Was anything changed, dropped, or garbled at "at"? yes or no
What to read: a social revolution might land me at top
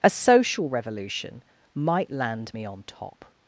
yes